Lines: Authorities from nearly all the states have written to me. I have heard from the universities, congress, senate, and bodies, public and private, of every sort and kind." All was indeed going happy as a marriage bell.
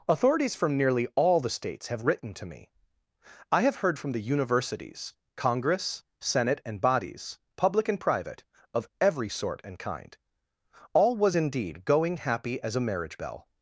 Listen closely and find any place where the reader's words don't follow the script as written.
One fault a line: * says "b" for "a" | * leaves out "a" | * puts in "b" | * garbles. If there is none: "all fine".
all fine